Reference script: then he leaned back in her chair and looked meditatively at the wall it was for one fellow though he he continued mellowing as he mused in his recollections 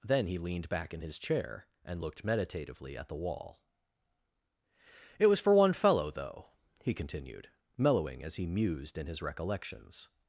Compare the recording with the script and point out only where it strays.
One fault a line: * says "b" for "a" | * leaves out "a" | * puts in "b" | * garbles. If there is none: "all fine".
* says "his" for "her"
* leaves out "he"